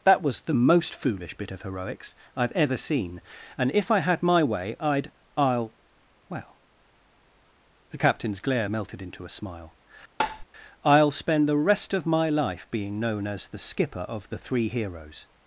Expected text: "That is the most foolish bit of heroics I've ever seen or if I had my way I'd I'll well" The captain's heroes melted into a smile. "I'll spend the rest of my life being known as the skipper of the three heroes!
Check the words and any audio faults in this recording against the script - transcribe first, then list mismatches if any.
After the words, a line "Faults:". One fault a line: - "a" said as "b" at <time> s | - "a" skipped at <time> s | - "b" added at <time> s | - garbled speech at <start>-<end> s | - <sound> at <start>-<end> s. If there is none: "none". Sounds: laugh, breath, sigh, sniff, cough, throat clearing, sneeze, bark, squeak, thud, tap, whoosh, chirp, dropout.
"That was the most foolish bit of heroics I've ever seen and if I had my way I'd I'll well" The captain's glare melted into a smile. "I'll spend the rest of my life being known as the skipper of the three heroes!
Faults:
- "is" said as "was" at 0.2 s
- "or" said as "and" at 3.5 s
- "heroes" said as "glare" at 8.4 s
- tap at 10.2-10.5 s